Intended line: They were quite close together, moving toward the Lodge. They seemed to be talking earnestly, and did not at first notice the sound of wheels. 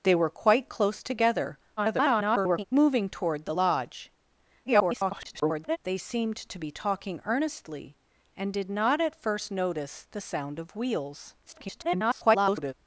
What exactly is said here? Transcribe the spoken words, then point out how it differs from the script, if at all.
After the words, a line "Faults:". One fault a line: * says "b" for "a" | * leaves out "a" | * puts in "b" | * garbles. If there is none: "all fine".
They were quite close together, [garbled] moving toward the Lodge. [garbled] They seemed to be talking earnestly, and did not at first notice the sound of wheels. [garbled]
Faults:
* garbles
* garbles
* garbles